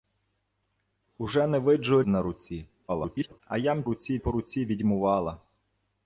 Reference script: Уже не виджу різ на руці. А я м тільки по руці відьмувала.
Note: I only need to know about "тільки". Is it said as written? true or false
false